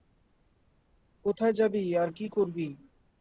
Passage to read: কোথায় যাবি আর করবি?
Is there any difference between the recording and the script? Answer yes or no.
yes